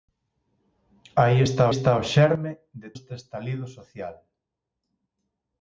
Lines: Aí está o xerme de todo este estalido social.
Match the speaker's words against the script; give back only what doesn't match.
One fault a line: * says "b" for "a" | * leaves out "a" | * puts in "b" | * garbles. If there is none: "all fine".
* puts in "está"
* leaves out "todo"